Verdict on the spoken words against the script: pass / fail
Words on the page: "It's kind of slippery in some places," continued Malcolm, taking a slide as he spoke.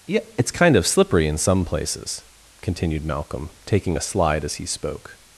fail